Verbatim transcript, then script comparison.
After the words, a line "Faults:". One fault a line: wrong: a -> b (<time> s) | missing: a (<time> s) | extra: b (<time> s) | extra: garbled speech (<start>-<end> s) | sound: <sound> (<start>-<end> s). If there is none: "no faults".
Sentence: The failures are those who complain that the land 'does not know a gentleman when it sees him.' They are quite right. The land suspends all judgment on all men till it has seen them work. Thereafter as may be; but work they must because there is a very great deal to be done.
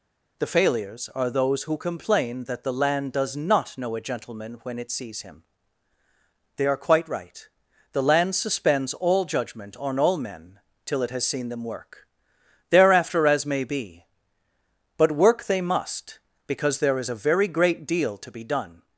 The failures are those who complain that the land 'does not know a gentleman when it sees him.' They are quite right. The land suspends all judgment on all men till it has seen them work. Thereafter as may be; but work they must because there is a very great deal to be done.
Faults:
no faults